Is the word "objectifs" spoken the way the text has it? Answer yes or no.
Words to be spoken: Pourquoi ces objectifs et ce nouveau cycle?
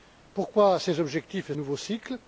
yes